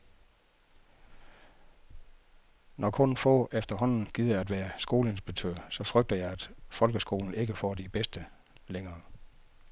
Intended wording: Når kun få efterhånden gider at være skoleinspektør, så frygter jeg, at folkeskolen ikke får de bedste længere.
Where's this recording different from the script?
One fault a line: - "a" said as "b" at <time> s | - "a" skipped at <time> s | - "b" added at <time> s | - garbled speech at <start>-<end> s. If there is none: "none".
none